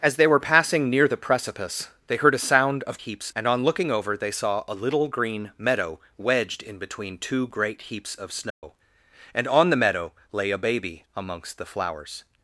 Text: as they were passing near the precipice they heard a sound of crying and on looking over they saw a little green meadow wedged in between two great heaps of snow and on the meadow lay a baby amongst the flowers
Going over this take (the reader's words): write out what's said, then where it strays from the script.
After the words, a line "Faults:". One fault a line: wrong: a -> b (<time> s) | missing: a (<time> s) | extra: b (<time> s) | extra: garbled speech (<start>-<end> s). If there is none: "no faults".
as they were passing near the precipice they heard a sound of heaps and on looking over they saw a little green meadow wedged in between two great heaps of snow and on the meadow lay a baby amongst the flowers
Faults:
wrong: crying -> heaps (3.0 s)